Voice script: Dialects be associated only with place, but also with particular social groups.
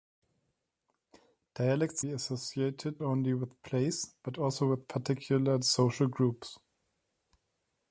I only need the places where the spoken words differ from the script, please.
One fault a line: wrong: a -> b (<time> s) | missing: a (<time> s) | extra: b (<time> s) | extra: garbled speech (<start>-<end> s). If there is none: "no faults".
no faults